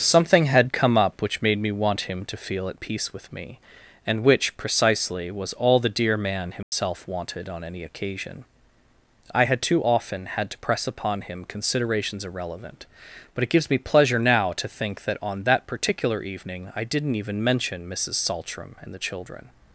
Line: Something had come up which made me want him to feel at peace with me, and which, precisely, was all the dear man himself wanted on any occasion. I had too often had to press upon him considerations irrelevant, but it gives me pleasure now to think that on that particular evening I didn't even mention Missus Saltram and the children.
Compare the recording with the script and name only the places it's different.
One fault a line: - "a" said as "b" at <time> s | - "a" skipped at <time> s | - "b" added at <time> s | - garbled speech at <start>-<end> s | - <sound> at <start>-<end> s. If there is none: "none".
- dropout at 6.6-6.7 s